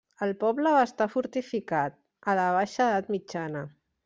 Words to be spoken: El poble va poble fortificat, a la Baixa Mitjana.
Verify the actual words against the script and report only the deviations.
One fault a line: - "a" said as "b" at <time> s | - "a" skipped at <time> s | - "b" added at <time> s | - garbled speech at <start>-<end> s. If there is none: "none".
- "poble" said as "estar" at 0.8 s
- "Edat" added at 2.9 s